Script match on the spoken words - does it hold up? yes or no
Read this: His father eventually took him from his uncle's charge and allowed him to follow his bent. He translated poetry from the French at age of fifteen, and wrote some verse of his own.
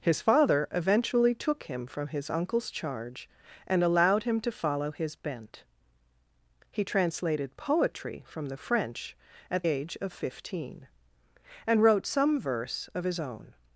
yes